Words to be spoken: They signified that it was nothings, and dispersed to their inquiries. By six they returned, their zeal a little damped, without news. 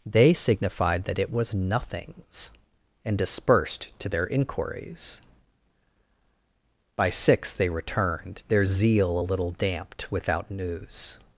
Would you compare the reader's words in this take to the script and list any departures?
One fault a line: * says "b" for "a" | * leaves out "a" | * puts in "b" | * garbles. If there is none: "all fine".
all fine